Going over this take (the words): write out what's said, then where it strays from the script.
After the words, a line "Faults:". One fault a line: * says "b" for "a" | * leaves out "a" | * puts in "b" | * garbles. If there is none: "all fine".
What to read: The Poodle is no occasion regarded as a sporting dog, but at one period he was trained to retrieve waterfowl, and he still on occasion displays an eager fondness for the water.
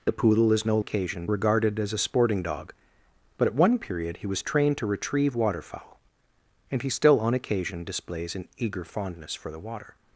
The Poodle is no occasion regarded as a sporting dog, but at one period he was trained to retrieve waterfowl, and he still on occasion displays an eager fondness for the water.
Faults:
all fine